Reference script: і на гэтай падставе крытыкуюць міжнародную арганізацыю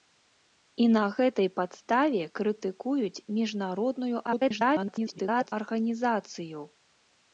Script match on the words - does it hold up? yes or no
no